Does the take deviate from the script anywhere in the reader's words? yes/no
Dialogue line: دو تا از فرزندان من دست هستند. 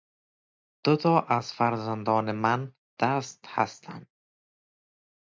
no